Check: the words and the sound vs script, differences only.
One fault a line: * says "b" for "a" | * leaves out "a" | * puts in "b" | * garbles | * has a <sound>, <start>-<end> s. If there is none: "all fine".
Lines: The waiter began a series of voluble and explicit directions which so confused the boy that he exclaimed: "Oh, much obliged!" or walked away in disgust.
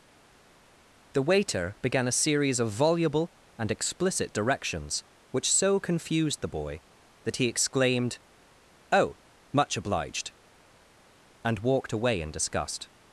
* says "and" for "or"